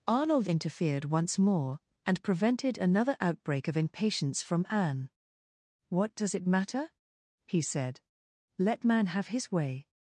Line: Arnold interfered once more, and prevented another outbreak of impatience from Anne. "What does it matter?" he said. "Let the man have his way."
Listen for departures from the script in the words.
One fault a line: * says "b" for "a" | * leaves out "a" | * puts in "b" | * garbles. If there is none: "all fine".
* leaves out "the"